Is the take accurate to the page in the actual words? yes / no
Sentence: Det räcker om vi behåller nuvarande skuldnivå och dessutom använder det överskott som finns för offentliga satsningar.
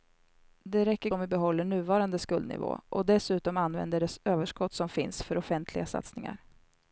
yes